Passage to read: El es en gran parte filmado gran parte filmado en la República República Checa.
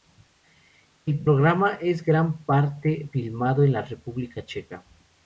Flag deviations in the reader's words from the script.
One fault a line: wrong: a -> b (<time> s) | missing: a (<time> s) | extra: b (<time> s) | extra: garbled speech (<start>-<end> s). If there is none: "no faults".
extra: programa (1.2 s)
missing: gran parte filmado (3.6 s)
missing: República (4.4 s)